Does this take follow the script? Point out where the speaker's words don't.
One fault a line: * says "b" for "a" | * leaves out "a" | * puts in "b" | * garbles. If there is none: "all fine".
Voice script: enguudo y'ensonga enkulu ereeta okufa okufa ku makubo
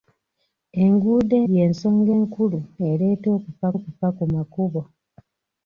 all fine